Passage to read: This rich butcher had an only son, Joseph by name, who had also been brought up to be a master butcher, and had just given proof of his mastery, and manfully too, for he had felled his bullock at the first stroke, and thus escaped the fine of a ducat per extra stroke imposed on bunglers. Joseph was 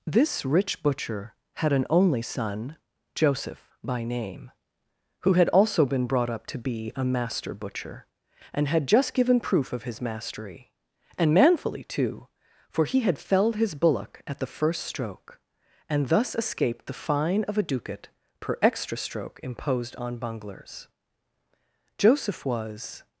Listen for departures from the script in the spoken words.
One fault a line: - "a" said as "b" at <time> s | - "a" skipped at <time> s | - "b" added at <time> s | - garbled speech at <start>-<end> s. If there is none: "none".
none